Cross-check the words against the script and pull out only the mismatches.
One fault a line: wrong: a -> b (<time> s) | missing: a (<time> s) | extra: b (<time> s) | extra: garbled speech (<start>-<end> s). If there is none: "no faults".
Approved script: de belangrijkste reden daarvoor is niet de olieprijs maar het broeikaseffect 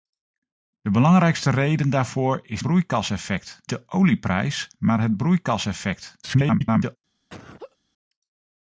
wrong: niet -> broeikaseffect (2.6 s)
extra: garbled speech (6.2-7.0 s)